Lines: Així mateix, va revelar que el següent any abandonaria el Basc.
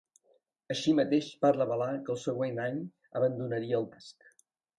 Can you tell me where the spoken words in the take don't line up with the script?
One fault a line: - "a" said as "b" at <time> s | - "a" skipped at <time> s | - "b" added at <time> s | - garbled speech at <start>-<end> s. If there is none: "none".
none